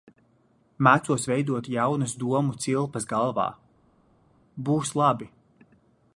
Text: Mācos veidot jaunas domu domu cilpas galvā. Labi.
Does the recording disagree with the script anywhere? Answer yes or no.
yes